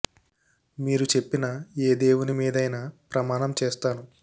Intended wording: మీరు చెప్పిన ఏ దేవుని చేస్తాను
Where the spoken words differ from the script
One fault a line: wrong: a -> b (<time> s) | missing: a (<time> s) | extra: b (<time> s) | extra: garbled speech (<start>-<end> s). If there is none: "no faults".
extra: మీదైనా ప్రమాణం (2.3 s)